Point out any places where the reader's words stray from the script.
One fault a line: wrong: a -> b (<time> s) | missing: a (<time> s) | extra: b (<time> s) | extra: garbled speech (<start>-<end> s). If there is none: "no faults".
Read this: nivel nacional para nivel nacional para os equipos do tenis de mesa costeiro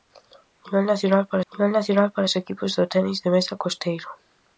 no faults